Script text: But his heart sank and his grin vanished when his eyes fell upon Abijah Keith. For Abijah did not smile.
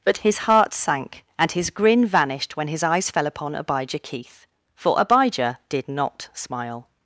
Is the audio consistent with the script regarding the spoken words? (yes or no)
yes